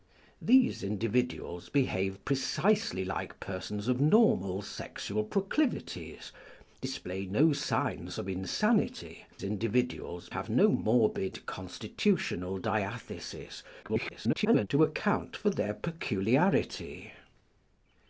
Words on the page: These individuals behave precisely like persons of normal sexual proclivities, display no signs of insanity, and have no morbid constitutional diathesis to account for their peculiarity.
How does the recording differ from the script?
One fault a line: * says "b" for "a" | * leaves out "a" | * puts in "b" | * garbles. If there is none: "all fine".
* says "individuals" for "and"
* garbles